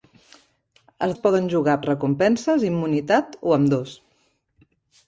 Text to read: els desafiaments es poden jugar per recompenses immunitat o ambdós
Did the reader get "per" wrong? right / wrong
wrong